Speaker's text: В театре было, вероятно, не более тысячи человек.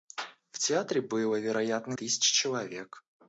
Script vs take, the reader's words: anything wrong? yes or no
yes